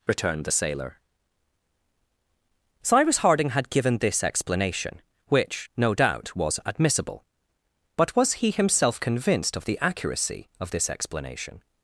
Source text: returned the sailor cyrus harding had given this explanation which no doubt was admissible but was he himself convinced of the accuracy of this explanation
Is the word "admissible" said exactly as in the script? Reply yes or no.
yes